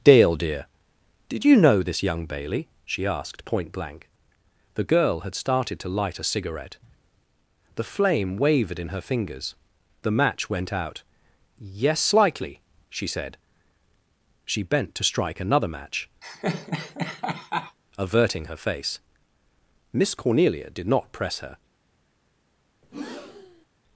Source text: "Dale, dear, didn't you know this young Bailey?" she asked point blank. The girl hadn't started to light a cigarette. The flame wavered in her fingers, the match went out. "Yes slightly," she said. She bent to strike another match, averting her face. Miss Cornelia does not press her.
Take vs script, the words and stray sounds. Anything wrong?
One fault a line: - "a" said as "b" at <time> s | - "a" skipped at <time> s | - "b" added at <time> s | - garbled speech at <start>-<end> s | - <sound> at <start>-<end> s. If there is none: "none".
- "didn't" said as "did" at 1.3 s
- "hadn't" said as "had" at 5.2 s
- laugh at 16.2-17.8 s
- "does" said as "did" at 20.7 s
- breath at 22.8-23.7 s